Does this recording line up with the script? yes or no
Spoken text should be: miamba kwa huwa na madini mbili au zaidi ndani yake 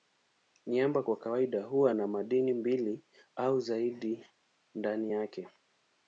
no